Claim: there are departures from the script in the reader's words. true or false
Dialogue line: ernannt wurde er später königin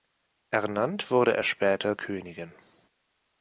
false